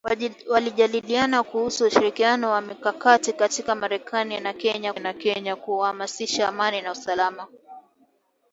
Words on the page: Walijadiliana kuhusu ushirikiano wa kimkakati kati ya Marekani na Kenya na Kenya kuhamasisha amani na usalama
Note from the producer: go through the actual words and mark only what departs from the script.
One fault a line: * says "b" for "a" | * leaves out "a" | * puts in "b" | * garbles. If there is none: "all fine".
all fine